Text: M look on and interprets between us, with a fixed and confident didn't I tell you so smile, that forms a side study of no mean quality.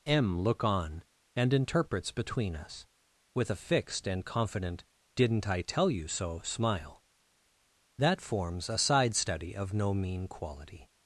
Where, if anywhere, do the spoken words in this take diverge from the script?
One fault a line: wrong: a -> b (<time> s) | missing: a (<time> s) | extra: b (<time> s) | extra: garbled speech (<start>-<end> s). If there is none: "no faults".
no faults